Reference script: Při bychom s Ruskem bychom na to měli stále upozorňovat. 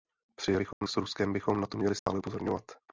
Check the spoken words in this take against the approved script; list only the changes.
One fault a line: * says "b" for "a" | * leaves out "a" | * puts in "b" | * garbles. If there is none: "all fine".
all fine